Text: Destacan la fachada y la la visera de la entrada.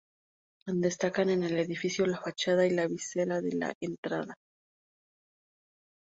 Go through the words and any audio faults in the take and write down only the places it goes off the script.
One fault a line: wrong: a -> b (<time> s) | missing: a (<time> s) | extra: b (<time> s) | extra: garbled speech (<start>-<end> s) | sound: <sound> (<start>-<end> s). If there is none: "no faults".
extra: en el edificio (1.3 s)
missing: la (2.9 s)